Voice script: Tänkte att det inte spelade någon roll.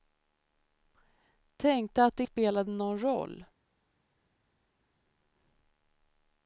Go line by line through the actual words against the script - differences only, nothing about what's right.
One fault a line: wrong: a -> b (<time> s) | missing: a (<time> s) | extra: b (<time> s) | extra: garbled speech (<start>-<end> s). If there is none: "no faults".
missing: inte (2.2 s)